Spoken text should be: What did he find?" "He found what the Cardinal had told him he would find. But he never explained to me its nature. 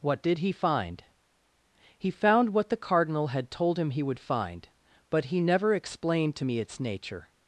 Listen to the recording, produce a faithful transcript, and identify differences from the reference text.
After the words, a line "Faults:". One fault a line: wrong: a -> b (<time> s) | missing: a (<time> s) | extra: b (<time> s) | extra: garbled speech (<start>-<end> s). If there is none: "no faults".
What did he find?" "He found what the Cardinal had told him he would find. But he never explained to me its nature.
Faults:
no faults